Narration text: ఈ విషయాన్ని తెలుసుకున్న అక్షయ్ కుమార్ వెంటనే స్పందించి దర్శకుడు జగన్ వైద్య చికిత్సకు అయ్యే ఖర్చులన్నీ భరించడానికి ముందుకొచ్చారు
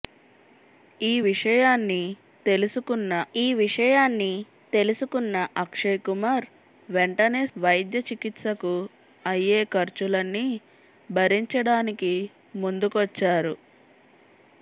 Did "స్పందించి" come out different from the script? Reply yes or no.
yes